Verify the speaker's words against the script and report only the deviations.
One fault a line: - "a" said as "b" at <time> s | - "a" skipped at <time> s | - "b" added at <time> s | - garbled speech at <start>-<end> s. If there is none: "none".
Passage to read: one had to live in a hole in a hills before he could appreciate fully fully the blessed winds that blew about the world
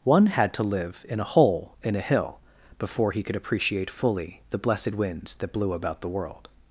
- "hills" said as "hill" at 2.0 s
- "fully" skipped at 4.4 s